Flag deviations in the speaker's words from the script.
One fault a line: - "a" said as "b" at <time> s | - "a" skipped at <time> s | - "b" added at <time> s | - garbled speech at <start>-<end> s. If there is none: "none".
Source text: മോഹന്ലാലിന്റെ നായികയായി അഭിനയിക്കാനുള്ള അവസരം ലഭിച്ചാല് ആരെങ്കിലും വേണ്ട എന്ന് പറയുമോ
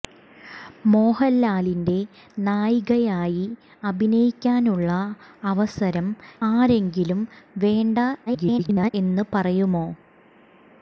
- "ലഭിച്ചാല്" skipped at 6.1 s
- garbled speech at 8.3-8.9 s